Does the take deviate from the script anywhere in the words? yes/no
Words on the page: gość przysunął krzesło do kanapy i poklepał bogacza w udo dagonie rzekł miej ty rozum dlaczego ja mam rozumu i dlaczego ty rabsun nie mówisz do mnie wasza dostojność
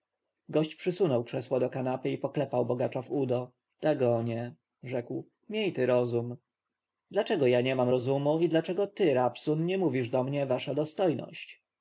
yes